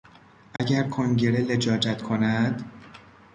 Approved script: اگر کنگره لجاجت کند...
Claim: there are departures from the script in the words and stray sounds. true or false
true